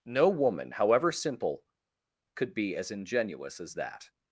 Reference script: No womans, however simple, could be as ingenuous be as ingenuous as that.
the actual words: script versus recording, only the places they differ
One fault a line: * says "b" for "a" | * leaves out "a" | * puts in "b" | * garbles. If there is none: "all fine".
* says "woman" for "womans"
* leaves out "be as ingenuous"